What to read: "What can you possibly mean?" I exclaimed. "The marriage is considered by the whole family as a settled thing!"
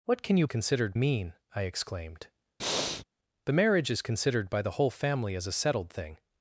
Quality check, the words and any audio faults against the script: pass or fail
fail